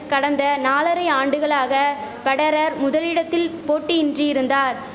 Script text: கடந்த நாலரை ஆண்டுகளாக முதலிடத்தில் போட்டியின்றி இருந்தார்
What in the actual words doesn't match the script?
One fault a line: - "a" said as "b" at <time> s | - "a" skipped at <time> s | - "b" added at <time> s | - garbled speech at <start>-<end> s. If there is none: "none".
- "பெடரர்" added at 2.2 s